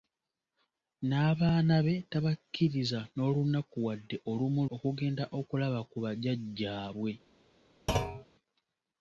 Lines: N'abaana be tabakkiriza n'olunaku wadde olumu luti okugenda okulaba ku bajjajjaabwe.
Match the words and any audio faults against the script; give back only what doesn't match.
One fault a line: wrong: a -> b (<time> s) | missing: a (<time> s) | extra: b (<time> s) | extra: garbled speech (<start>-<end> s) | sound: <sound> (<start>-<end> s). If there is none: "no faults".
missing: luti (4.6 s)
sound: thud (7.9-8.3 s)